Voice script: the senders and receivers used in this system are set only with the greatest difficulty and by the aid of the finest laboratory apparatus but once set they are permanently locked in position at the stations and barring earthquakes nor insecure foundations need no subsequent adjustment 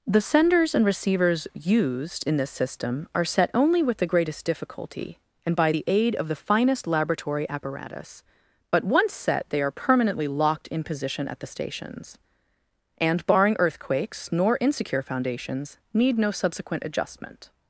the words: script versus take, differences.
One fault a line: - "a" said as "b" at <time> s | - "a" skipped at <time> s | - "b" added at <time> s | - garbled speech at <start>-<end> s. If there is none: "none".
none